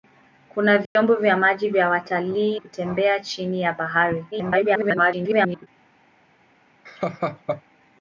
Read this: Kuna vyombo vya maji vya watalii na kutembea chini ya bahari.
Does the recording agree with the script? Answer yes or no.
no